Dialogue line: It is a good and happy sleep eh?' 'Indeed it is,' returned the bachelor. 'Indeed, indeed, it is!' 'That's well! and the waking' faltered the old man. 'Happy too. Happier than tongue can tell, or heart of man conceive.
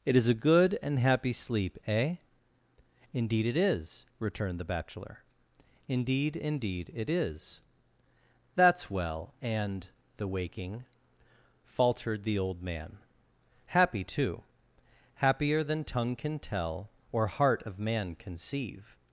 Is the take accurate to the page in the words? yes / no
yes